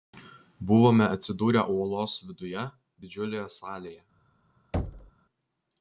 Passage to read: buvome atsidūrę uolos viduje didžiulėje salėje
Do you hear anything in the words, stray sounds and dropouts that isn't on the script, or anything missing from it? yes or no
yes